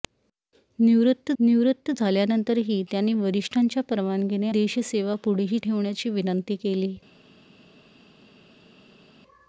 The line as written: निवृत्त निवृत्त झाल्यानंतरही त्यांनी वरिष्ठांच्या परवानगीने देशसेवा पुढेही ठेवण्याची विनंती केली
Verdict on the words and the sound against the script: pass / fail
pass